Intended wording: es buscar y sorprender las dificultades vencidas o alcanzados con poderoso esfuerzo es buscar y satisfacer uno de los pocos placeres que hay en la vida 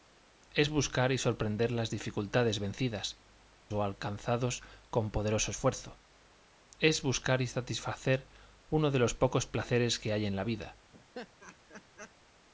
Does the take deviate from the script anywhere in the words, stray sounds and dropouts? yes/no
yes